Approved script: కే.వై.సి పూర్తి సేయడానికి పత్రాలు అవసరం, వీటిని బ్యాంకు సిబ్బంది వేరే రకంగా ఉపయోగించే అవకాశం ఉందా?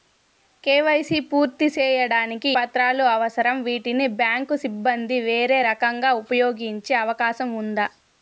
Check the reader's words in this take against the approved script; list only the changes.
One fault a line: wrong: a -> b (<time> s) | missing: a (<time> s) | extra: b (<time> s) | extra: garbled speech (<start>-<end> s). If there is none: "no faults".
no faults